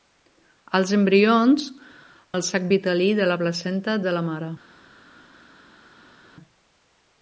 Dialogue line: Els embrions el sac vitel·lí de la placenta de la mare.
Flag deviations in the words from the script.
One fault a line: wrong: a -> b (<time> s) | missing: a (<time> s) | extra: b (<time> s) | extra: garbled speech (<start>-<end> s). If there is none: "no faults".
no faults